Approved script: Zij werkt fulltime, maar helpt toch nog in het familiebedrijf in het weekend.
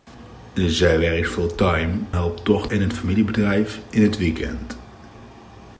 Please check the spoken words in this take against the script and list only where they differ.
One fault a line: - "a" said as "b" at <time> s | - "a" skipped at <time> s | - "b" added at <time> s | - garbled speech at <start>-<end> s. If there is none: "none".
- "maar" skipped at 1.9 s
- "nog" skipped at 2.7 s